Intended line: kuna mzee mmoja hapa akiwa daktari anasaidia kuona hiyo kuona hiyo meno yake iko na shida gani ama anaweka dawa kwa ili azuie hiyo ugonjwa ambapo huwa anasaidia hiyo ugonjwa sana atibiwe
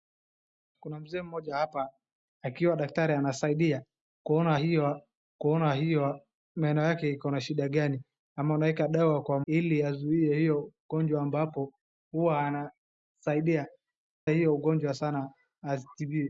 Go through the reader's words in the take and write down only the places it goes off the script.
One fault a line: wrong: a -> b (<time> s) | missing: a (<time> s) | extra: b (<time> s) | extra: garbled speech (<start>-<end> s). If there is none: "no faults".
no faults